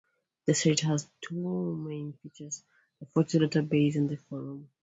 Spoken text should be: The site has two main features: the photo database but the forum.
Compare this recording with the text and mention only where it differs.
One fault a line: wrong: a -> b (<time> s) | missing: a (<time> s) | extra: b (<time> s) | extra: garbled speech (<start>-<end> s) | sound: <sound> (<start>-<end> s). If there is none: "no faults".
wrong: but -> and (4.0 s)